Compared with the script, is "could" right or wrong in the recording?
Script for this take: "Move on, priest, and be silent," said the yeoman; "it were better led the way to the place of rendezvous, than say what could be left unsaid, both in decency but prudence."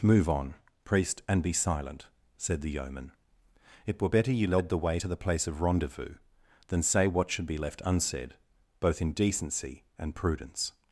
wrong